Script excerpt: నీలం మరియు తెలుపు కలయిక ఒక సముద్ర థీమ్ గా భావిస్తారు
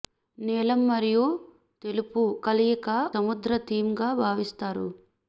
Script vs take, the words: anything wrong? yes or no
yes